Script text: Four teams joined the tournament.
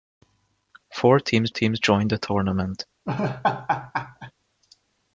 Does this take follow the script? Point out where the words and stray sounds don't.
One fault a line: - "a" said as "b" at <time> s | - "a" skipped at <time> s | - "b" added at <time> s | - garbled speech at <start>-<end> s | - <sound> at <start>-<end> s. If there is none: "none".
- "teams" added at 1.5 s
- laugh at 3.1-4.3 s